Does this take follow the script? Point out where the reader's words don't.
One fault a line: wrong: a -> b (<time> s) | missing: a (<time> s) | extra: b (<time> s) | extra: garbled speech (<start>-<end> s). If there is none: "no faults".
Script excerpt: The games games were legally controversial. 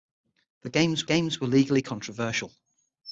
no faults